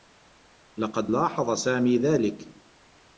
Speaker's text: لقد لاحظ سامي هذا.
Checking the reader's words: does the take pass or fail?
fail